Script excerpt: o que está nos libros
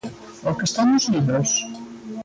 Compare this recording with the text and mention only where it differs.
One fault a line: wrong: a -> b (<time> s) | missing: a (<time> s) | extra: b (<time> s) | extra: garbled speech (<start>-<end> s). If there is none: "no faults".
no faults